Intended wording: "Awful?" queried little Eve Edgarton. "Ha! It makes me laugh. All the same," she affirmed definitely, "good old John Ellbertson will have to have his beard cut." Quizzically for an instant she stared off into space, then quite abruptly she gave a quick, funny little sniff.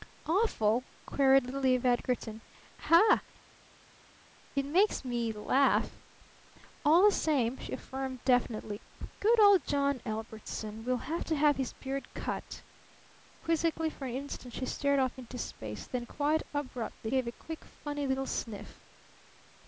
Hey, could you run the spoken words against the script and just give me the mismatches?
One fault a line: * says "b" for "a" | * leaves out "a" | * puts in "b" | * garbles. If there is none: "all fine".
* leaves out "she"